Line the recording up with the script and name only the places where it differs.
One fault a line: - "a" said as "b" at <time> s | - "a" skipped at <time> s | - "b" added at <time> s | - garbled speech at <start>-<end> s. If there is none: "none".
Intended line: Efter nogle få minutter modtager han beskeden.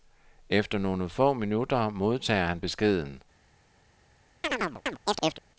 none